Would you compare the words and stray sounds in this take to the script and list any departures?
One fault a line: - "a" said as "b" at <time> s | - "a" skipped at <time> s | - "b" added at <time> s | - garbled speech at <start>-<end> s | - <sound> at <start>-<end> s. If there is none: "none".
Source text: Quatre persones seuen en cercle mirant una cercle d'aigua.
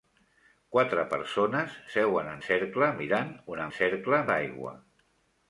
none